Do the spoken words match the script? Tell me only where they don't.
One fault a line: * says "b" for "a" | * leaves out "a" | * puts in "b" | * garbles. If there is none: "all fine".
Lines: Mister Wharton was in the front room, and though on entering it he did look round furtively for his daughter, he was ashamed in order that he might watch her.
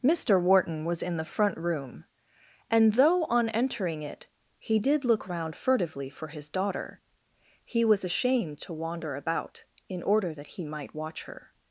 * puts in "to wander about"